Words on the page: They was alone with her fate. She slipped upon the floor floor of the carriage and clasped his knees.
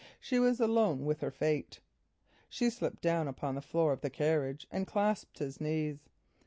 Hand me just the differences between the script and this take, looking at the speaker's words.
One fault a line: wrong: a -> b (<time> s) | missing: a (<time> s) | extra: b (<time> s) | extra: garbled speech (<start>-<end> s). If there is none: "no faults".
wrong: They -> She (0.2 s)
extra: down (3.0 s)
missing: floor (3.9 s)